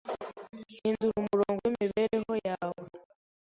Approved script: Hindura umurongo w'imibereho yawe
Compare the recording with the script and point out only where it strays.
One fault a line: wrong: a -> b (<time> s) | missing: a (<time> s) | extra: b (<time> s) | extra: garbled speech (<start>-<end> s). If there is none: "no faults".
no faults